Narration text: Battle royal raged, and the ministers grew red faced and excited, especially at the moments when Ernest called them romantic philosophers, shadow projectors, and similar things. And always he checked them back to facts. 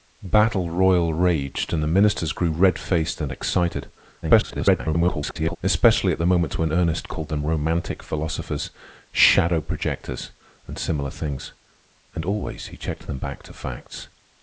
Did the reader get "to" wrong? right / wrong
right